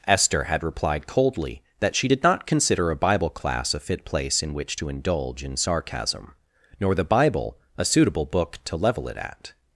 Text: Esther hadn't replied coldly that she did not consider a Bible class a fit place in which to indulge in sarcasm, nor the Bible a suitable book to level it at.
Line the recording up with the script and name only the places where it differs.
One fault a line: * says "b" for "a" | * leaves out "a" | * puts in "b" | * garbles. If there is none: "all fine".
* says "had" for "hadn't"